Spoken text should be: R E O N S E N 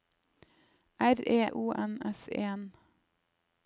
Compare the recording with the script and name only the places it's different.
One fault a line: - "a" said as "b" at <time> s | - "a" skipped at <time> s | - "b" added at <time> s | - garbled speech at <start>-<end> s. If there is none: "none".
none